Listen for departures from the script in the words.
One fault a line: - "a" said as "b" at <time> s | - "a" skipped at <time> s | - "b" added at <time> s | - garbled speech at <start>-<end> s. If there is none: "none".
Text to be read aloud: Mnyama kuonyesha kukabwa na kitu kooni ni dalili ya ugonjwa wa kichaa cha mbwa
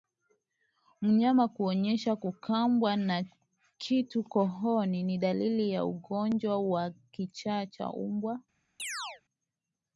none